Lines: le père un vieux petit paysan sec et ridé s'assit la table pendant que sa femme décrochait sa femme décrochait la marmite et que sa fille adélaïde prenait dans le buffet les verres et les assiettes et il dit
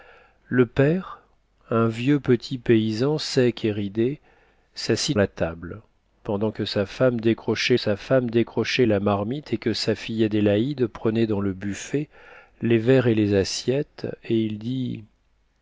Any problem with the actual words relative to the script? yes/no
no